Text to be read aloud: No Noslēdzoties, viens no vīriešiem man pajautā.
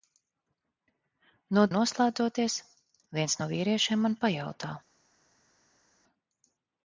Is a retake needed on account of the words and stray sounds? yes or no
no